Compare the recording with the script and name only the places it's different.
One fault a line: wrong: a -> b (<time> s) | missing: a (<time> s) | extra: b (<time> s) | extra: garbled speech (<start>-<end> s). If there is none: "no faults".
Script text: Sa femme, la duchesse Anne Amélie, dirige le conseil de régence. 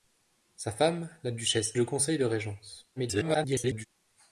missing: Anne Amélie dirige (1.8 s)
extra: garbled speech (3.0-3.9 s)